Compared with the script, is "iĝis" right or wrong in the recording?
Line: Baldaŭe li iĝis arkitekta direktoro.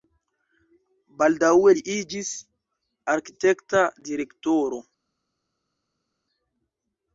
right